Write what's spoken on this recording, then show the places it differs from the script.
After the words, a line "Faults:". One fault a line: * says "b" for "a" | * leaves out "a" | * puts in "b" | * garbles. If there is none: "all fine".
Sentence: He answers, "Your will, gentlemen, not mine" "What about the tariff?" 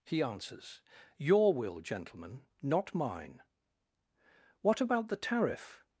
He answers, "Your will, gentlemen, not mine" "What about the tariff?"
Faults:
all fine